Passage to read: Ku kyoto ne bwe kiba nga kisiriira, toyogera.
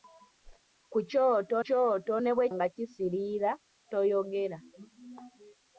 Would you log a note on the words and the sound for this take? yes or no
yes